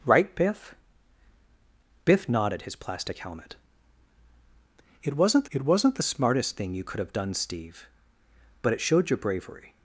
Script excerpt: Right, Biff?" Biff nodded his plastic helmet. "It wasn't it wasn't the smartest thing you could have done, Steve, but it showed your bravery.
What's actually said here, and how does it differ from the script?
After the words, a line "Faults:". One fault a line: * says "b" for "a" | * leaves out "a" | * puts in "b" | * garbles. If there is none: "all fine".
Right, Biff?" Biff nodded his plastic helmet. "It wasn't it wasn't the smartest thing you could have done, Steve, but it showed your bravery.
Faults:
all fine